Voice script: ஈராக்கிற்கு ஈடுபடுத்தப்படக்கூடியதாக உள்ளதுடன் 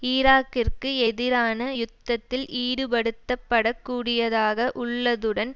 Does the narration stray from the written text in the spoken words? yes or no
yes